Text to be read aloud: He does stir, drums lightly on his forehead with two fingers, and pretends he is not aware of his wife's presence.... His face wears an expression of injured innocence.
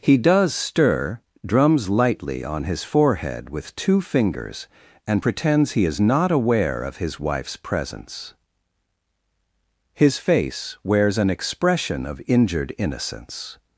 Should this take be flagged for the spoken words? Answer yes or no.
no